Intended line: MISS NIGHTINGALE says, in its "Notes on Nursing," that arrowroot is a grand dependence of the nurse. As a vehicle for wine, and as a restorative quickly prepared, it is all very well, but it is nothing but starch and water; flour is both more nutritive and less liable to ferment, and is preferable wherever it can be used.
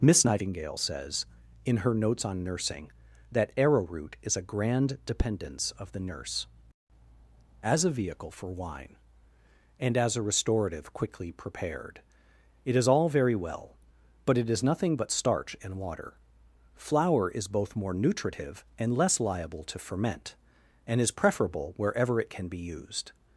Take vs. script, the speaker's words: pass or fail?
fail